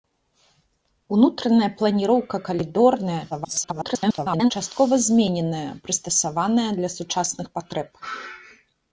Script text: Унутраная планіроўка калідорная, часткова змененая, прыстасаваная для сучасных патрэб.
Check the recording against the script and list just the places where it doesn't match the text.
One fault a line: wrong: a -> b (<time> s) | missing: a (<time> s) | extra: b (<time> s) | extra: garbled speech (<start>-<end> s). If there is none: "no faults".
extra: garbled speech (3.3-4.5 s)